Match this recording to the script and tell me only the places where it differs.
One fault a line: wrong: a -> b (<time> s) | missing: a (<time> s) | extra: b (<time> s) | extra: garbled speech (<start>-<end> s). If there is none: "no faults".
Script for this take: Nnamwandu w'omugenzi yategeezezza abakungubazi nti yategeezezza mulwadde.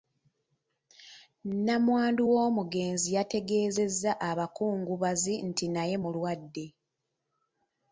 wrong: yategeezezza -> naye (5.7 s)